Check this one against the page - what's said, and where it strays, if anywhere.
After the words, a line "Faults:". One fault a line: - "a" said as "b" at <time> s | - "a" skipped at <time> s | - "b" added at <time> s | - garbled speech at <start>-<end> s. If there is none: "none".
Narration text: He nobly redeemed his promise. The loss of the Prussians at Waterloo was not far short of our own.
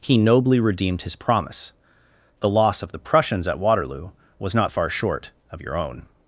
He nobly redeemed his promise. The loss of the Prussians at Waterloo was not far short of your own.
Faults:
- "our" said as "your" at 5.6 s